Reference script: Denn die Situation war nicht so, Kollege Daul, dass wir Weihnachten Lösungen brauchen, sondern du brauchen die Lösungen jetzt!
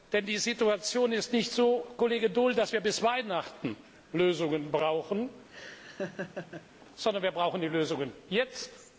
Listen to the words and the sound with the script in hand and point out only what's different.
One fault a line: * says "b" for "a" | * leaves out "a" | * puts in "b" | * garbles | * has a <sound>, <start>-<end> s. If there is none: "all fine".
* says "ist" for "war"
* puts in "bis"
* has a laugh, 5.5-6.7 s
* says "wir" for "du"